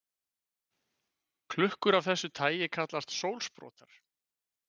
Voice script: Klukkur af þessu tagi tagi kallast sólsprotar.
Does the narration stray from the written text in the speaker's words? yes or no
yes